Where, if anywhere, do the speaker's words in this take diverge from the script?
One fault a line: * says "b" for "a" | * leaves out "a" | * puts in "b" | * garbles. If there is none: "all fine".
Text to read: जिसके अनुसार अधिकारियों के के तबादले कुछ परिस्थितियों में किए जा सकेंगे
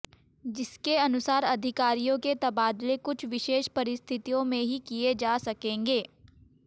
* leaves out "के"
* puts in "विशेष"
* puts in "ही"